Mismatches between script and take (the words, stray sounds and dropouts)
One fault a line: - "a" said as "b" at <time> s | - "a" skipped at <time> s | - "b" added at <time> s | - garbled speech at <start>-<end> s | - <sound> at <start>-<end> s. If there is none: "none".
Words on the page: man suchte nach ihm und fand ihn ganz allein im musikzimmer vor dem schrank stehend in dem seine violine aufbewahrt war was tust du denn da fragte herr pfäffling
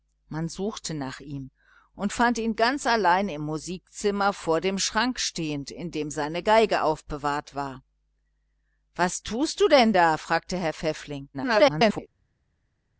- garbled speech at 11.3-12.1 s